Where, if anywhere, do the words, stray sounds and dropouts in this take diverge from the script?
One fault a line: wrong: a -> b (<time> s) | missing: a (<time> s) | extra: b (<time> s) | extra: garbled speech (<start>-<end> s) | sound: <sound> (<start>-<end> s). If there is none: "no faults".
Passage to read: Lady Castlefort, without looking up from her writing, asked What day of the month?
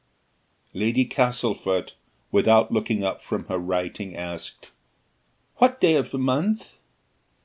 no faults